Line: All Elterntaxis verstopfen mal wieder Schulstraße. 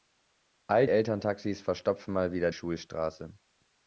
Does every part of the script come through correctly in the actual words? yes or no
yes